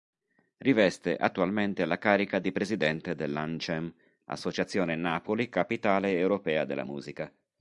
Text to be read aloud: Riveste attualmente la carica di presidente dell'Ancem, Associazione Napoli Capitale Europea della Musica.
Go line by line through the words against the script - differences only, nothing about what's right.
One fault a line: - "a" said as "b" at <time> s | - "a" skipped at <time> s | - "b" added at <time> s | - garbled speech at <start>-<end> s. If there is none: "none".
none